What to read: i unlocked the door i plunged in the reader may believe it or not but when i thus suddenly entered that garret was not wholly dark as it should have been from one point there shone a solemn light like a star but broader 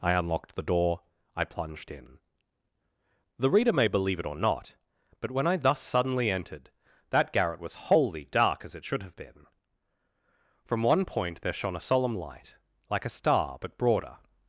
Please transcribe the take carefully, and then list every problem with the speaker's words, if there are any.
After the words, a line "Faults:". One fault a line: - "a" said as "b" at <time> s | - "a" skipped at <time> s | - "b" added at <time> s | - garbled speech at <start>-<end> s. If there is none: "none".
i unlocked the door i plunged in the reader may believe it or not but when i thus suddenly entered that garret was wholly dark as it should have been from one point there shone a solemn light like a star but broader
Faults:
- "not" skipped at 7.8 s